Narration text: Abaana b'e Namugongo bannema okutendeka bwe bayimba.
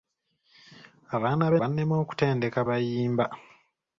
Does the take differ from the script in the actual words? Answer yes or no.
yes